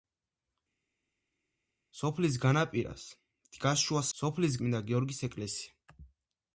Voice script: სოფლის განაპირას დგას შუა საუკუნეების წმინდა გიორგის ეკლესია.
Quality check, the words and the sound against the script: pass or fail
fail